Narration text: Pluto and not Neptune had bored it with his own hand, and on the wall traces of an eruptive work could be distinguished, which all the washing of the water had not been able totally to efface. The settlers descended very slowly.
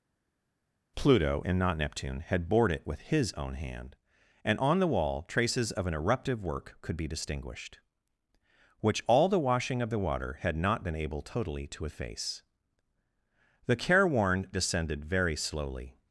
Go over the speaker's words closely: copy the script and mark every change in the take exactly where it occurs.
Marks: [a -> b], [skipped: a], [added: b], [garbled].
Pluto and not Neptune had bored it with his own hand, and on the wall traces of an eruptive work could be distinguished, which all the washing of the water had not been able totally to efface. The [settlers -> careworn] descended very slowly.